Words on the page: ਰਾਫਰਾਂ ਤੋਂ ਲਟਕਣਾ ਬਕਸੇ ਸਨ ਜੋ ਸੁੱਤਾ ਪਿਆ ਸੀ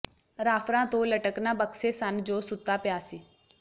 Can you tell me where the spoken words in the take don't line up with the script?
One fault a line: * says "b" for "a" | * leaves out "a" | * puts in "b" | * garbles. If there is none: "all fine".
all fine